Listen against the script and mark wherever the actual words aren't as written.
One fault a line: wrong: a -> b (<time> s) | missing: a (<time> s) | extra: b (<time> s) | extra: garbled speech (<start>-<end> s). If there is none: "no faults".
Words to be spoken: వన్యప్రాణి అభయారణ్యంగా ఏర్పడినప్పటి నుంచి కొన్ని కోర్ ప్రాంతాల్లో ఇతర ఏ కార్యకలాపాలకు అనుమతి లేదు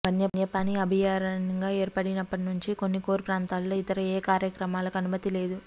no faults